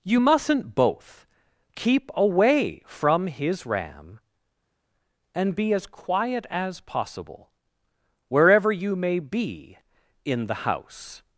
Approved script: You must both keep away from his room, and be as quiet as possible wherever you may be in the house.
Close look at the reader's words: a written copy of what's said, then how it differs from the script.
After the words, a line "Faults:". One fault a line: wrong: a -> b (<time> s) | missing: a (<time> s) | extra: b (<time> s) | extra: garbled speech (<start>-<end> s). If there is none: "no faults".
You mustn't both keep away from his ram, and be as quiet as possible wherever you may be in the house.
Faults:
wrong: must -> mustn't (0.2 s)
wrong: room -> ram (3.7 s)